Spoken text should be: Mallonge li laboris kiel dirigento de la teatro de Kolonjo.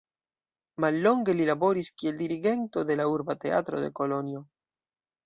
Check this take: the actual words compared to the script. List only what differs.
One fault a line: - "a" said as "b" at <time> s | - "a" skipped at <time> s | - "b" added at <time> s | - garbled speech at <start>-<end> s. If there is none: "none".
- "urba" added at 3.2 s